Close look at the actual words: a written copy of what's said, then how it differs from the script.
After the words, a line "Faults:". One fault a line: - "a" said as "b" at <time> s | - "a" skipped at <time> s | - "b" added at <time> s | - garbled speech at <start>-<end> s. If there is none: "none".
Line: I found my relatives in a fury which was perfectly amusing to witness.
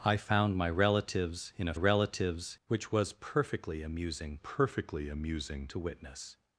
I found my relatives in a relatives which was perfectly amusing perfectly amusing to witness.
Faults:
- "fury" said as "relatives" at 1.7 s
- "perfectly amusing" added at 4.4 s